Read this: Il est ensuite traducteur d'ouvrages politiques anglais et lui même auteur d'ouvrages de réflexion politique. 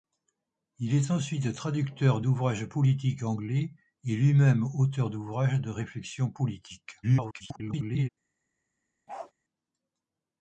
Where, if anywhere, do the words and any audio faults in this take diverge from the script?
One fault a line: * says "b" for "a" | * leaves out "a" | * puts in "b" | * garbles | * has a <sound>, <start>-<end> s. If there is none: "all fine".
* garbles
* has a bark, 9.1-9.3 s